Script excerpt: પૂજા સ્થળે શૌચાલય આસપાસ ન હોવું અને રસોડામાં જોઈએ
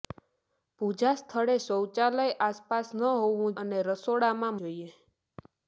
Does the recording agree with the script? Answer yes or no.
yes